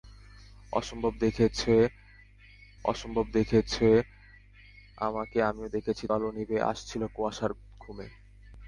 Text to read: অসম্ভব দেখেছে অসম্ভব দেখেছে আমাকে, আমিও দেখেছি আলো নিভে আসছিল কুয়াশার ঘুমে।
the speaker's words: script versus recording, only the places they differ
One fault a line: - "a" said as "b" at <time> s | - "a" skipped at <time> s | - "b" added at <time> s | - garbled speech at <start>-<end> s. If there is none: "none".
none